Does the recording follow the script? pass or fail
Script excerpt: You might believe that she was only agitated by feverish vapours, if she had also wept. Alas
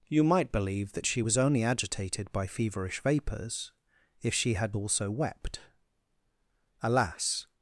pass